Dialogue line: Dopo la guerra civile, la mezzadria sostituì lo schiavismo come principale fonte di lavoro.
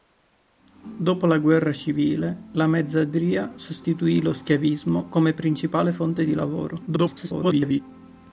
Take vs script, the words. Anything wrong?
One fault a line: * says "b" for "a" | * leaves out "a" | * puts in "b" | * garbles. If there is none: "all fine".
* garbles